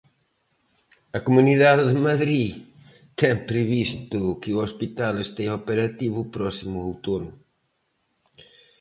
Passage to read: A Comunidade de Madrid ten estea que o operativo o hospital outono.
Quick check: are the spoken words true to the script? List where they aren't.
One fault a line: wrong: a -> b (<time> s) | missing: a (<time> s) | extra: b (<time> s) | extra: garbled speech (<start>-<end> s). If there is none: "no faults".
wrong: estea -> previsto (3.5 s)
extra: hospital estea (4.7 s)
wrong: hospital -> próximo (6.3 s)